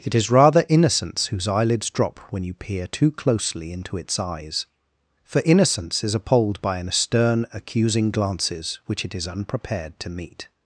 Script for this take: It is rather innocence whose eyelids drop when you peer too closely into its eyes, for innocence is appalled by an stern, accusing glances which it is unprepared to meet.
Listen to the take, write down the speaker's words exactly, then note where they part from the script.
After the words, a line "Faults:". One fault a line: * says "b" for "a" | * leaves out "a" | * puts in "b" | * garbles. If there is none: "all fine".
It is rather innocence whose eyelids drop when you peer too closely into its eyes, for innocence is appalled by an stern, accusing glances which it is unprepared to meet.
Faults:
all fine